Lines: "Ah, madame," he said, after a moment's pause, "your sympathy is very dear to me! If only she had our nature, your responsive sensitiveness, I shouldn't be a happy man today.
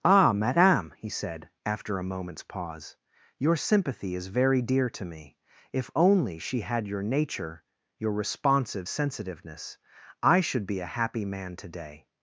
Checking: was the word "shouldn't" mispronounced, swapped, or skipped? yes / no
yes